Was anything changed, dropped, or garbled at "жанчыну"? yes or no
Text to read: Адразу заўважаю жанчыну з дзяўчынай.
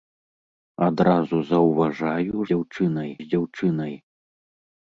yes